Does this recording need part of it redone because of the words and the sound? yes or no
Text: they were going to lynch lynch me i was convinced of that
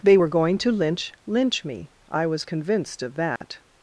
yes